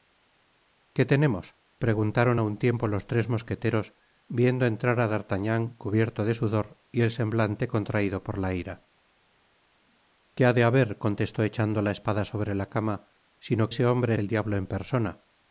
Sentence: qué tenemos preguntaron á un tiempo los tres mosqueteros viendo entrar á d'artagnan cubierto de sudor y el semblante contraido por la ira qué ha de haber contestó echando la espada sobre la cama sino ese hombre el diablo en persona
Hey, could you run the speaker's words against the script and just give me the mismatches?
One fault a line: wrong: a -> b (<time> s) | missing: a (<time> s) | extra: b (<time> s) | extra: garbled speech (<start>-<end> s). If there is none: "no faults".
no faults